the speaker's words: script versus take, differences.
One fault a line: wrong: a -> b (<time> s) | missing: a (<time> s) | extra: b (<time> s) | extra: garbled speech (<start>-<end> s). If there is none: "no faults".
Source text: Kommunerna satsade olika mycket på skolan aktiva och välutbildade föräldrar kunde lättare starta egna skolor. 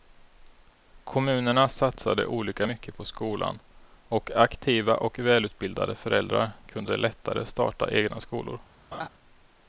extra: och (4.1 s)